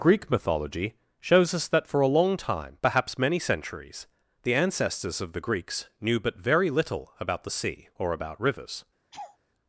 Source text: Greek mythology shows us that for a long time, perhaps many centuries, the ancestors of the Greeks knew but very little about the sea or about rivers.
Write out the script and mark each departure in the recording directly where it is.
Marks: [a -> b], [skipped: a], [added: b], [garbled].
Greek mythology shows us that for a long time, perhaps many centuries, the ancestors of the Greeks knew but very little about the sea or about rivers.